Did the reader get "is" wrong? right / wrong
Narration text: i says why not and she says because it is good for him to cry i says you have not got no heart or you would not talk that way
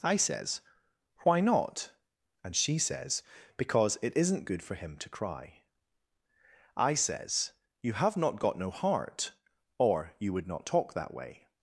wrong